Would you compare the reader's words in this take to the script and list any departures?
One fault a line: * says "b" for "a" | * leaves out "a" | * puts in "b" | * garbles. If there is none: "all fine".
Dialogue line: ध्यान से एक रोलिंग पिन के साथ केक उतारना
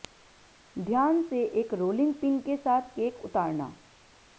all fine